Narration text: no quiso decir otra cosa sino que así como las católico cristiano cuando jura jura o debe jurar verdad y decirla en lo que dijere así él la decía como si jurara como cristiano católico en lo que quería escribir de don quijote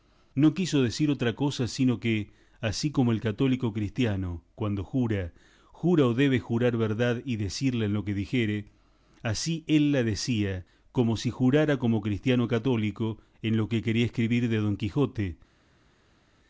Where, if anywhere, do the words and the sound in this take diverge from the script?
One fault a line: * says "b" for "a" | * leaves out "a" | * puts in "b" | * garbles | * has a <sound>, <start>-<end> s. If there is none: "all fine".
* says "el" for "las"